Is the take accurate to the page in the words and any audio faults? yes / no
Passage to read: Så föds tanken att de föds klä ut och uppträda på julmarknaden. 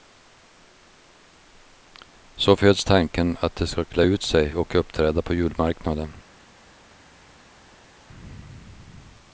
no